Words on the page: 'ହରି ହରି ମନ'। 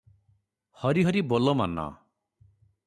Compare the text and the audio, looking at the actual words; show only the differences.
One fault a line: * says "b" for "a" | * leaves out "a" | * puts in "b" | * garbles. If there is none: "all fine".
* puts in "ବୋଲ"